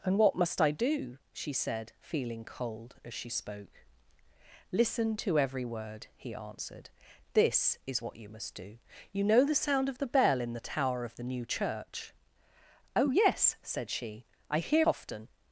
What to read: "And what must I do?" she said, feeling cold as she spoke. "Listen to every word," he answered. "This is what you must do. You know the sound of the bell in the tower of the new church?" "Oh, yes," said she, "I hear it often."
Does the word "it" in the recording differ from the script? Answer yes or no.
yes